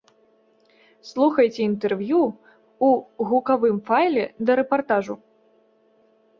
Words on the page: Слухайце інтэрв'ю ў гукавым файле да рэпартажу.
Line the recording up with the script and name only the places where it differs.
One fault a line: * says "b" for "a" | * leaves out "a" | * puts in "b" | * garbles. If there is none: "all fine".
all fine